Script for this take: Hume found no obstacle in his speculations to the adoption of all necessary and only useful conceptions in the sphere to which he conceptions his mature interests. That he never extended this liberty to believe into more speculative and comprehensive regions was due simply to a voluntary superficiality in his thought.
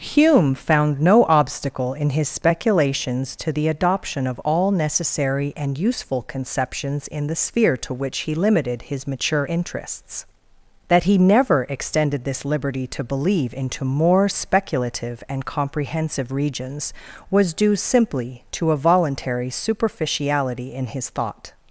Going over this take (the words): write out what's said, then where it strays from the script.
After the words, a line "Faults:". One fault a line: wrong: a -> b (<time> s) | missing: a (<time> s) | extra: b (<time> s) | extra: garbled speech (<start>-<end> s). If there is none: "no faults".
Hume found no obstacle in his speculations to the adoption of all necessary and useful conceptions in the sphere to which he limited his mature interests. That he never extended this liberty to believe into more speculative and comprehensive regions was due simply to a voluntary superficiality in his thought.
Faults:
missing: only (5.8 s)
wrong: conceptions -> limited (8.3 s)